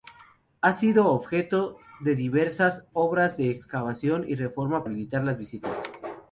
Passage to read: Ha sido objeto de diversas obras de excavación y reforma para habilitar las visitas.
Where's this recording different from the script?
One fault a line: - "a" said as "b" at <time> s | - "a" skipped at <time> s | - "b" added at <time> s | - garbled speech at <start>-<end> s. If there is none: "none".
- "para" skipped at 4.8 s